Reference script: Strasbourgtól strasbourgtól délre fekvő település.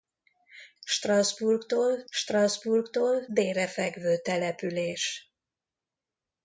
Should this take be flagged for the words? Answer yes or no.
no